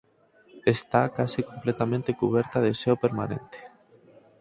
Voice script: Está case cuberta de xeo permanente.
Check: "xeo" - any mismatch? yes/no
no